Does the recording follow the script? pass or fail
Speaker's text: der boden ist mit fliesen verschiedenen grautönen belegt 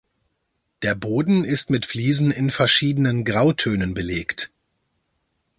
fail